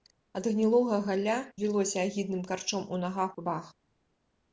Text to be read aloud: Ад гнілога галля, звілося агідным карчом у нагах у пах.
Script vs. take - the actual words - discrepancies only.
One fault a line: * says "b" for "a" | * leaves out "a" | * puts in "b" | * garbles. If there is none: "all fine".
all fine